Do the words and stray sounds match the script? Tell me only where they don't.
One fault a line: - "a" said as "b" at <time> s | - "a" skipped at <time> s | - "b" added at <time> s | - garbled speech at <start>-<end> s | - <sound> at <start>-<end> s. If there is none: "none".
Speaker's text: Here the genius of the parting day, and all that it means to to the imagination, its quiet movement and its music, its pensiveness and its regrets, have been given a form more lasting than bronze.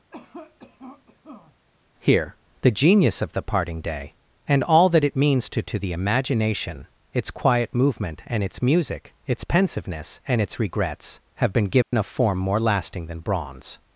- cough at 0.1-1.5 s
- dropout at 11.8-11.9 s